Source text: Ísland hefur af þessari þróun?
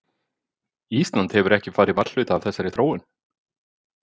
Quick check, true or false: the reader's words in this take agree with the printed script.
false